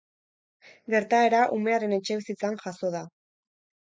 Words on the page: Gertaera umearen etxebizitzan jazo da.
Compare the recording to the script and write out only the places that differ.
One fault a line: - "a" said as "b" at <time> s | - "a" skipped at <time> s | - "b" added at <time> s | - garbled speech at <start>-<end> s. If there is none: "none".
none